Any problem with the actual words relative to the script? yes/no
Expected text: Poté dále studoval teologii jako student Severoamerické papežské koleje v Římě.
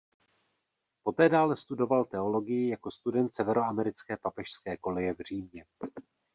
no